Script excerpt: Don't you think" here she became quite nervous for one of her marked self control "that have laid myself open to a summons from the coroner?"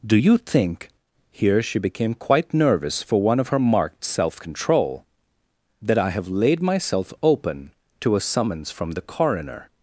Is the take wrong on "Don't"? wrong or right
wrong